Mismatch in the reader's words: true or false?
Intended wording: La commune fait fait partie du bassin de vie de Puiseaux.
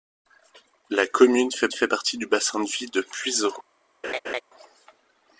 false